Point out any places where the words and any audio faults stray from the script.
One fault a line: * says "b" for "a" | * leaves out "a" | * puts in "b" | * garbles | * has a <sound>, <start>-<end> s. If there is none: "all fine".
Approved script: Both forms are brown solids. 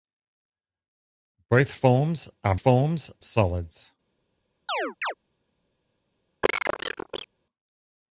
* says "forms" for "brown"
* has a chirp, 4.7-5.1 s
* has a cough, 6.4-7.3 s